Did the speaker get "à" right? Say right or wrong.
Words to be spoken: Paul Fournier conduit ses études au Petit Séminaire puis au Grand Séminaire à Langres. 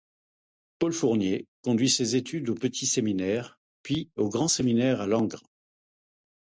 right